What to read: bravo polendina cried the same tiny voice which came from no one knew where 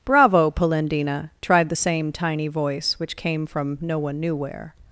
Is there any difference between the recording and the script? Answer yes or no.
yes